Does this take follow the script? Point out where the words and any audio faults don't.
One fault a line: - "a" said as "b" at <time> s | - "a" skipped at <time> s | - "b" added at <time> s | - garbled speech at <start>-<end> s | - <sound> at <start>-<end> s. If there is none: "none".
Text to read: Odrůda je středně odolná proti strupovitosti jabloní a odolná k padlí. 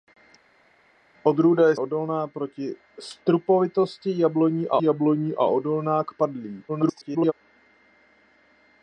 - "středně" skipped at 1.7 s
- "jabloní a" added at 4.8 s
- garbled speech at 6.7-7.3 s